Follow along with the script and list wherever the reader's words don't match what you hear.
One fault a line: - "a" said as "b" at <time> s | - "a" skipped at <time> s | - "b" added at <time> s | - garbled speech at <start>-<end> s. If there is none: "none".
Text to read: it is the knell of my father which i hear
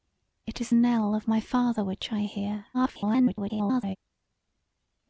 - "the" skipped at 0.7 s
- garbled speech at 2.7-4.0 s